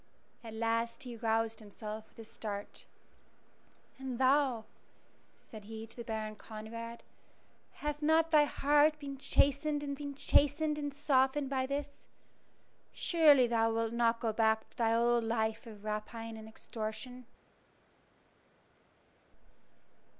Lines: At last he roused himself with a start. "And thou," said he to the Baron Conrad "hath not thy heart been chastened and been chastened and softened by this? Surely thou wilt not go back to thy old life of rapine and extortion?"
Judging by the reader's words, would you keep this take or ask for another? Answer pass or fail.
pass